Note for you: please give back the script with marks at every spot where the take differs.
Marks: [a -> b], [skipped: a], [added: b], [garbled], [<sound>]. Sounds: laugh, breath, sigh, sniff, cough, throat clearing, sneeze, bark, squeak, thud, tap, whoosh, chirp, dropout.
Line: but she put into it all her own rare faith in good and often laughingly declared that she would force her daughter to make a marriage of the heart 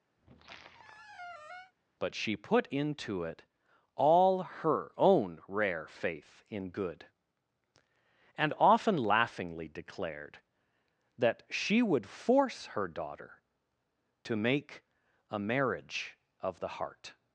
[squeak] but she put into it all her own rare faith in good and often laughingly declared that she would force her daughter to make a marriage of the heart